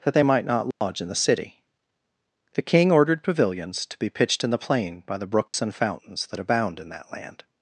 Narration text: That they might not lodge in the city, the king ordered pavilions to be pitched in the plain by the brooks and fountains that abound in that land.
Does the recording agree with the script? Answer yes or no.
yes